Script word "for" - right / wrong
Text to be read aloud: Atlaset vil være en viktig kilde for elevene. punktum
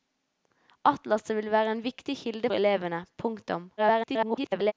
wrong